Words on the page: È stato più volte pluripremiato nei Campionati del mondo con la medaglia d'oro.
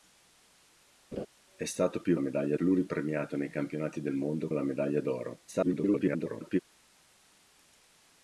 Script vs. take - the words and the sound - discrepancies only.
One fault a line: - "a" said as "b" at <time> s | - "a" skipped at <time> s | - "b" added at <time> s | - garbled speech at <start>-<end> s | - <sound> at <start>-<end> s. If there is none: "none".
- laugh at 1.1-1.3 s
- "volte" said as "medaglia" at 2.2 s
- "con" skipped at 4.5 s
- garbled speech at 5.5-6.6 s